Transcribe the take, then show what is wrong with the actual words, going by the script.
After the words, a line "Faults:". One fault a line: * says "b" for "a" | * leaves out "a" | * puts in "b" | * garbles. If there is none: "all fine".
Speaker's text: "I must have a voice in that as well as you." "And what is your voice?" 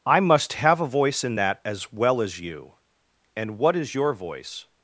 "I must have a voice in that as well as you." "And what is your voice?"
Faults:
all fine